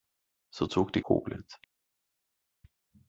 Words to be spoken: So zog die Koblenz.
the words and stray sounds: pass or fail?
pass